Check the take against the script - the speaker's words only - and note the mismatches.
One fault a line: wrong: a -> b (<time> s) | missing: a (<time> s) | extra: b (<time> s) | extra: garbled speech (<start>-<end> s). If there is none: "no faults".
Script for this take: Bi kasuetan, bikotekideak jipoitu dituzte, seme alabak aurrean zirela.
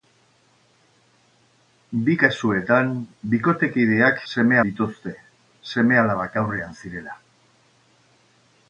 wrong: jipoitu -> seme (4.3 s)